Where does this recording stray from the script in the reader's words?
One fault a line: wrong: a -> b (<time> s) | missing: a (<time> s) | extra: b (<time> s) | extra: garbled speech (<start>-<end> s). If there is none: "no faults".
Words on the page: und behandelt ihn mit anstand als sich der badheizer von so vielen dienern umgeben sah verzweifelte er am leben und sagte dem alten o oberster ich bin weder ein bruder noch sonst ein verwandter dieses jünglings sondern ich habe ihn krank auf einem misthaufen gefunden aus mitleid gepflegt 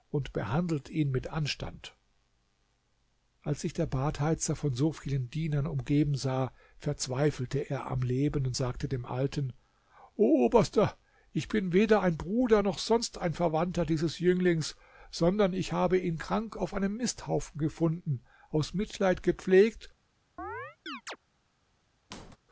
no faults